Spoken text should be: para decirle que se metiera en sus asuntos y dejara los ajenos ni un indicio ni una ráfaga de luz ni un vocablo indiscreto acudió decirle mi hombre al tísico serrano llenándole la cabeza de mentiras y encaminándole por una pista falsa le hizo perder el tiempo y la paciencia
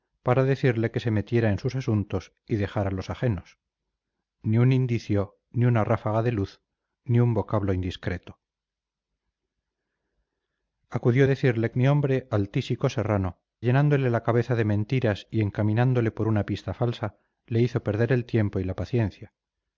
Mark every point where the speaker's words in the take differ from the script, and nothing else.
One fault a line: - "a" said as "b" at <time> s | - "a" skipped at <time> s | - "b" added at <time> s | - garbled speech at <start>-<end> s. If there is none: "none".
none